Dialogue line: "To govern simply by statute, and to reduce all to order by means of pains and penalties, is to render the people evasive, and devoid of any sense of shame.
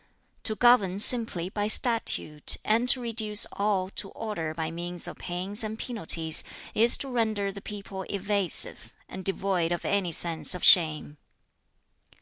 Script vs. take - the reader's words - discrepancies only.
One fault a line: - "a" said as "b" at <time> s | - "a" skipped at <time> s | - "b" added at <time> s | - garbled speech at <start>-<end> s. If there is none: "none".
none